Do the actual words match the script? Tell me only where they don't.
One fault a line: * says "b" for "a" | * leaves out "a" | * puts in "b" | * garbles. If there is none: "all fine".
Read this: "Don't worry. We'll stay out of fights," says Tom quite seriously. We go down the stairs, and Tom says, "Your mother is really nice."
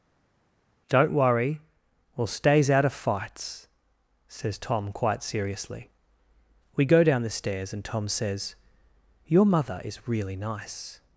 * says "stays" for "stay"